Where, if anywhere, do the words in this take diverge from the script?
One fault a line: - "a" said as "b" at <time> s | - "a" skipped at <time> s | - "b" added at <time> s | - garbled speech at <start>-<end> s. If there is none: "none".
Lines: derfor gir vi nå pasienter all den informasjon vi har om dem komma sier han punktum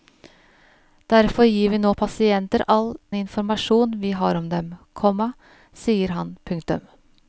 - "den" skipped at 3.0 s